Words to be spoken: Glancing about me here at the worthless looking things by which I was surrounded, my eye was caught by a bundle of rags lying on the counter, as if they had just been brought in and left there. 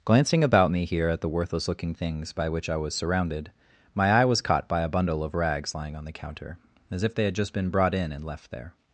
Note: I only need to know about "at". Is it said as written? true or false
true